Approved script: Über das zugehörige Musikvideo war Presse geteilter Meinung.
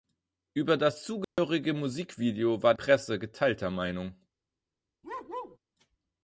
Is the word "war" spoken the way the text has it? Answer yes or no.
yes